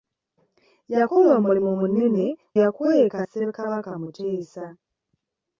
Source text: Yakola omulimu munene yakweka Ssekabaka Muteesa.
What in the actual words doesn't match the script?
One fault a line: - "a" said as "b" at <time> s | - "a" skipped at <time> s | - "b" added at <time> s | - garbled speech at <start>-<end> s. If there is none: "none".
none